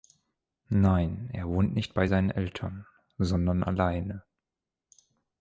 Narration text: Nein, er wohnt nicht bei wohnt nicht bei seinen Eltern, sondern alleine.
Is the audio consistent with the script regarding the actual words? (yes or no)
no